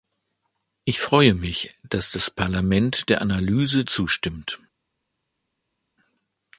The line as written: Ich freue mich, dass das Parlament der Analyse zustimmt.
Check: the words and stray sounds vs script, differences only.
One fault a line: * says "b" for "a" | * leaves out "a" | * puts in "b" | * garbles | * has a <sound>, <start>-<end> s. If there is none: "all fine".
all fine